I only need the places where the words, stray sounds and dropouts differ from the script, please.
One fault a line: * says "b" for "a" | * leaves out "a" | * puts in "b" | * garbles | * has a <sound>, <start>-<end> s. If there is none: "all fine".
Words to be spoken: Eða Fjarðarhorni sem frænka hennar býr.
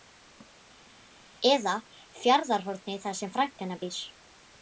* puts in "þar"